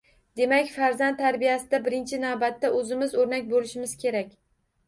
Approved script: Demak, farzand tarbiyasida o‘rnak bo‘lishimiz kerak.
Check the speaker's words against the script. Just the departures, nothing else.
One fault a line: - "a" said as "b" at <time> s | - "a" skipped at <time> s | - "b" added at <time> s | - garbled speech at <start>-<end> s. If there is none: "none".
- "birinchi navbatda o‘zimiz" added at 1.9 s